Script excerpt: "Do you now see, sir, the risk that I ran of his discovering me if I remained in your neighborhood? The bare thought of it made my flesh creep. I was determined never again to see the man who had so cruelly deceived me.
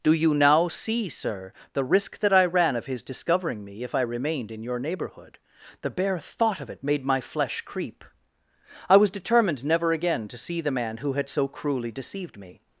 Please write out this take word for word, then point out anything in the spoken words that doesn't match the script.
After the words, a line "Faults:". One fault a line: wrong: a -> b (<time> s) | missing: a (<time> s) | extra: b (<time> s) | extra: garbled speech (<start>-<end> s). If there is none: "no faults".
"Do you now see, sir, the risk that I ran of his discovering me if I remained in your neighborhood? The bare thought of it made my flesh creep. I was determined never again to see the man who had so cruelly deceived me.
Faults:
no faults